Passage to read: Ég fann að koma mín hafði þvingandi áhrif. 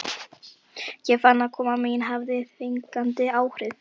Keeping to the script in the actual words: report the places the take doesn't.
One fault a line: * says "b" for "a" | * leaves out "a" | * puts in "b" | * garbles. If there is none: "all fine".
all fine